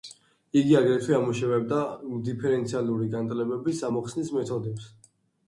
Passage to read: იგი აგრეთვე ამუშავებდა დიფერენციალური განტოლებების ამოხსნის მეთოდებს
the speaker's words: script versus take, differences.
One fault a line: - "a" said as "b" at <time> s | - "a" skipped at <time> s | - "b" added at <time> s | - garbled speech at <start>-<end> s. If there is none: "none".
none